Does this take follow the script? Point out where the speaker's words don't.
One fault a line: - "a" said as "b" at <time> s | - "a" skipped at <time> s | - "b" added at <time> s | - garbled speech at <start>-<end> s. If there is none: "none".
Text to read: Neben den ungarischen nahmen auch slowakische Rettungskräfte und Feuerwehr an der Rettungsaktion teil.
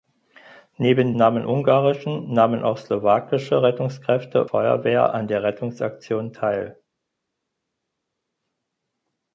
- "den" said as "nahmen" at 1.2 s
- "und" skipped at 4.5 s